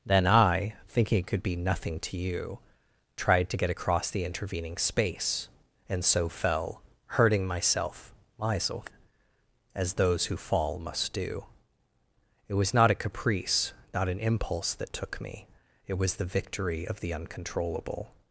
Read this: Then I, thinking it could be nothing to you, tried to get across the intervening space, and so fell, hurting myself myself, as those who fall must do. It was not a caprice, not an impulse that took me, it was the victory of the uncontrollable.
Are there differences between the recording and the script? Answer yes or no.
no